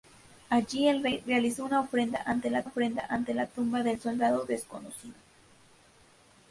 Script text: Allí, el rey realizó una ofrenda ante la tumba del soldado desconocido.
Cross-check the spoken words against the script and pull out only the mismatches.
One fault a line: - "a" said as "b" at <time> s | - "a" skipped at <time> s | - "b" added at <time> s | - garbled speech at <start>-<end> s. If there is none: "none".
- "ofrenda ante la" added at 2.6 s